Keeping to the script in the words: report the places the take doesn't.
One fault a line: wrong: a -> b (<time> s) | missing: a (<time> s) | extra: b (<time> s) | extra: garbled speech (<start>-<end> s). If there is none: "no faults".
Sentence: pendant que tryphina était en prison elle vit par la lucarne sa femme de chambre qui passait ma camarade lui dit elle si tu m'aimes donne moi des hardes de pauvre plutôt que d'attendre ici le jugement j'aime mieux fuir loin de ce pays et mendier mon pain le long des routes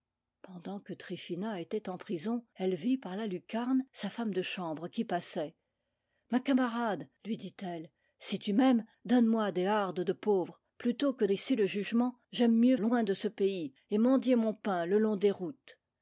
missing: d'attendre (11.2 s)
missing: fuir (12.8 s)